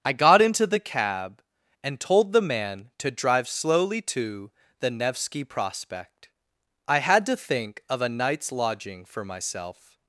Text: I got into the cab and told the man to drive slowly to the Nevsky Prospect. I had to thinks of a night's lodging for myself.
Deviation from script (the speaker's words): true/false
true